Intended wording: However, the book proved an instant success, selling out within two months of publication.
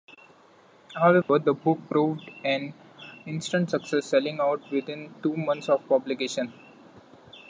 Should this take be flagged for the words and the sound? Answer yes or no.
yes